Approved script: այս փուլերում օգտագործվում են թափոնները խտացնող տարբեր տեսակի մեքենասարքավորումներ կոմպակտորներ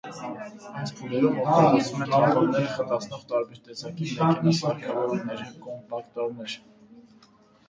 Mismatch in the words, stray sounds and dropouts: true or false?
false